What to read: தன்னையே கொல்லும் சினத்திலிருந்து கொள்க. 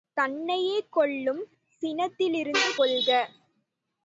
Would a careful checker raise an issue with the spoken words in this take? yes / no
no